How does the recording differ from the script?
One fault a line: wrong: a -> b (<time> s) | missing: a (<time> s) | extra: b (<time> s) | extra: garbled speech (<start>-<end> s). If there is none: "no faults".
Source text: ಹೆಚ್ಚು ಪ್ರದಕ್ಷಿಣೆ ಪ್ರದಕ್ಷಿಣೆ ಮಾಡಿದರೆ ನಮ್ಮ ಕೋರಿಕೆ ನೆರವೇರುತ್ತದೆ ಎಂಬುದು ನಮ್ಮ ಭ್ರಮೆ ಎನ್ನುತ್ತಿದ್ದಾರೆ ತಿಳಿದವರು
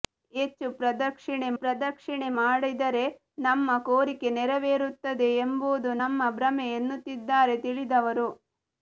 no faults